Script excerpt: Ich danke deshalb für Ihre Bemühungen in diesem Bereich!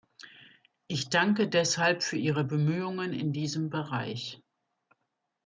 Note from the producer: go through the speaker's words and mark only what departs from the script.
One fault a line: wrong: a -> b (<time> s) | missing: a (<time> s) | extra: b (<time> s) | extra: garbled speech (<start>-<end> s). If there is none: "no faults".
no faults